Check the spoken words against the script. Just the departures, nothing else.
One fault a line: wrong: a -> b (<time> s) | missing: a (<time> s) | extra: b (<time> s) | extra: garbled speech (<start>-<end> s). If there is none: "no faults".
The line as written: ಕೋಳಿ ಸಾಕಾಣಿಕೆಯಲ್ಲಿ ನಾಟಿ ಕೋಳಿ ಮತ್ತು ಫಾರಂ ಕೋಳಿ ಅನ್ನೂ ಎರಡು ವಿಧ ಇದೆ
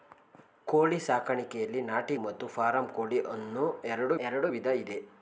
missing: ಕೋಳಿ (2.2 s)
extra: ಎರಡು (4.2 s)